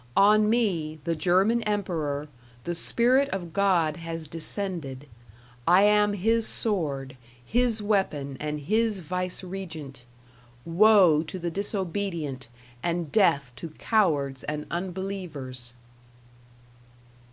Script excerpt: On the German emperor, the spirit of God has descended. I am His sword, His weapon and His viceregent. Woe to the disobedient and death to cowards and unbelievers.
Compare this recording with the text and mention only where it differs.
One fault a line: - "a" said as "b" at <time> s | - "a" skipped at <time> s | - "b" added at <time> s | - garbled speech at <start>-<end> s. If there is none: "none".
- "me" added at 0.5 s